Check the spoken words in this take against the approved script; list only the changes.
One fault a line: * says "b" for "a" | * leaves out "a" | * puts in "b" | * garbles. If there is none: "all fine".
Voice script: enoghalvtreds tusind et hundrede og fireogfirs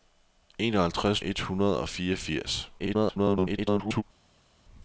* leaves out "tusind"
* garbles